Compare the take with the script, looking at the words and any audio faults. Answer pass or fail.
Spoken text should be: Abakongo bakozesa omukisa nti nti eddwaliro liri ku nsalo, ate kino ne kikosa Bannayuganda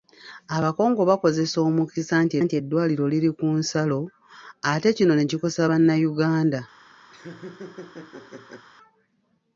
fail